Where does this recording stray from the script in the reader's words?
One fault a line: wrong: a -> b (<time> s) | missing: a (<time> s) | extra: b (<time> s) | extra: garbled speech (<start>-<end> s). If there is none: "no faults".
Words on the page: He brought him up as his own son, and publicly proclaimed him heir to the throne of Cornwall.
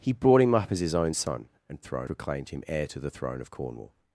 wrong: publicly -> throne (1.8 s)